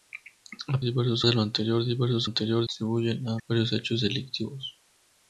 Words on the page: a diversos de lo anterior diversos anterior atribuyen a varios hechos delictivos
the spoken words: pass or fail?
pass